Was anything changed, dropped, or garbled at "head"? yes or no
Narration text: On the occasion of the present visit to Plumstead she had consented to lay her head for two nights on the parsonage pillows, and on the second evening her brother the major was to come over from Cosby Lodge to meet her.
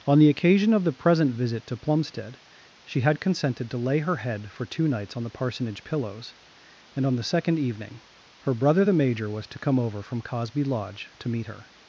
no